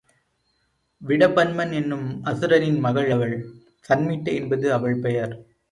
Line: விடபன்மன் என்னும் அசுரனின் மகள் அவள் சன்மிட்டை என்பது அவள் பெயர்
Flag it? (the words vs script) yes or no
no